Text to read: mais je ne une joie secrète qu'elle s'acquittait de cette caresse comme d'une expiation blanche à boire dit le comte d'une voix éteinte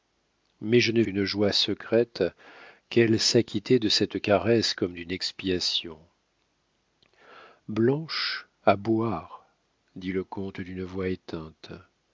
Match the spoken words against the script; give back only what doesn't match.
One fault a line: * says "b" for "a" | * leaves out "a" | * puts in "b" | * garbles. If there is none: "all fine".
all fine